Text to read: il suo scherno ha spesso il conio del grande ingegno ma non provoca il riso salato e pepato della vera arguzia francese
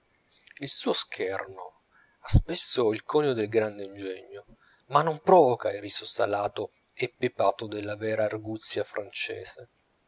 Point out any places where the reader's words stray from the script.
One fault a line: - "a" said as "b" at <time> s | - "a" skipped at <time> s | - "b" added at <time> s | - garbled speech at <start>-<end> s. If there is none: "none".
none